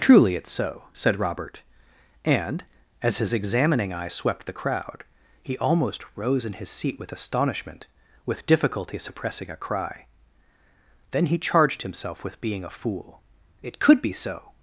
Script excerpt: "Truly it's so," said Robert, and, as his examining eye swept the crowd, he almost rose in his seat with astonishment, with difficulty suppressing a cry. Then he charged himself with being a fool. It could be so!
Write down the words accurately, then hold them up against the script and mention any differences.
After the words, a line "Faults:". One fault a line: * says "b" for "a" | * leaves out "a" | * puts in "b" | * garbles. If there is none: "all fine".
"Truly it's so," said Robert, and, as his examining eye swept the crowd, he almost rose in his seat with astonishment, with difficulty suppressing a cry. Then he charged himself with being a fool. It could be so!
Faults:
all fine